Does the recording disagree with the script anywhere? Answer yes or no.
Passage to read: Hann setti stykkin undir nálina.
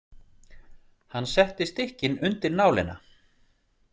no